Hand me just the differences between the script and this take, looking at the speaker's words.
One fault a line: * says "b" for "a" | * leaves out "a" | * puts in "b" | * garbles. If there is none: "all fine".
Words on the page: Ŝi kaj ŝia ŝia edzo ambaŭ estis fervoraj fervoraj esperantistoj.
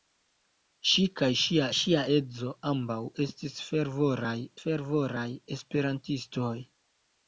all fine